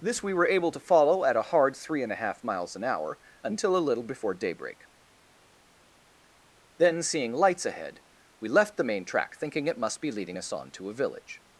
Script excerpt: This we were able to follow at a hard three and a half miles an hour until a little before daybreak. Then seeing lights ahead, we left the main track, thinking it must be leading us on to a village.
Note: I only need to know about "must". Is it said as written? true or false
true